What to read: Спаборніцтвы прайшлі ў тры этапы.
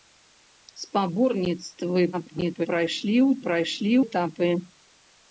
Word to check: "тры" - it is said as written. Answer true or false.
false